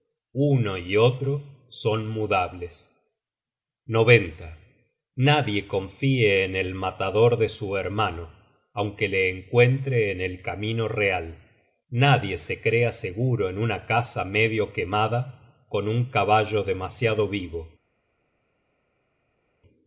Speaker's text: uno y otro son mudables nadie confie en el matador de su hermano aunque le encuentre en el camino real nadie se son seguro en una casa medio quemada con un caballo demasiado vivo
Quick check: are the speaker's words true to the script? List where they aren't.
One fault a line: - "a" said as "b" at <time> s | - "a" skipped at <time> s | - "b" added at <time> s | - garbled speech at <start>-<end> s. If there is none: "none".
- "son" said as "crea" at 12.6 s